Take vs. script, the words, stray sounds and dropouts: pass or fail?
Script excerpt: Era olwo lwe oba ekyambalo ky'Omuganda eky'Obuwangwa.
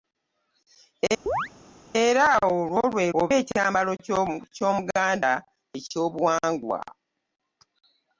fail